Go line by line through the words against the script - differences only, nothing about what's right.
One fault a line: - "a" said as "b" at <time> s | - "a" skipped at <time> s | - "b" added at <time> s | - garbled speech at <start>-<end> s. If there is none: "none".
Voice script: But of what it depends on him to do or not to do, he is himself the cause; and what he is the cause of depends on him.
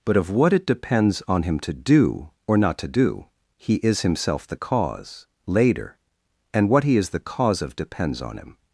- "later" added at 5.5 s